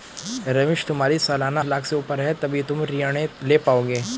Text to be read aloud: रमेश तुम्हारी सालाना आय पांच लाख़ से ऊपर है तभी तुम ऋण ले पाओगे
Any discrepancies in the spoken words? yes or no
yes